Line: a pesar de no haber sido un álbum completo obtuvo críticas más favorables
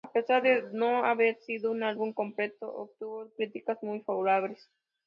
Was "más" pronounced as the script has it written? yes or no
no